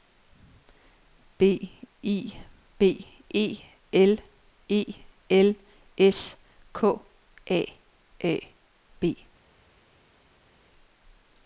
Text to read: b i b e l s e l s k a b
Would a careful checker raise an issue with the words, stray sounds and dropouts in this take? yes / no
yes